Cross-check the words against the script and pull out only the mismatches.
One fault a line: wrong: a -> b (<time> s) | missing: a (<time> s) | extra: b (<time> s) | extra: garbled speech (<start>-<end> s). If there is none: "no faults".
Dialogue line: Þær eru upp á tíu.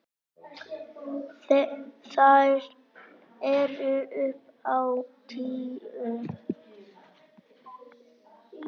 no faults